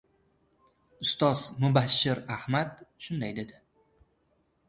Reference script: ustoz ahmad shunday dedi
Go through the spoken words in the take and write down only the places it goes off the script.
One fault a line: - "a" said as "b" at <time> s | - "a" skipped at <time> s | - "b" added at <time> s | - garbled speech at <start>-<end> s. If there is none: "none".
- "mubashshir" added at 1.6 s